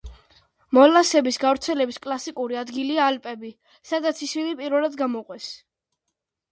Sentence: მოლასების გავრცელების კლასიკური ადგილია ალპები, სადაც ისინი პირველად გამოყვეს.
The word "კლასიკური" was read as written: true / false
true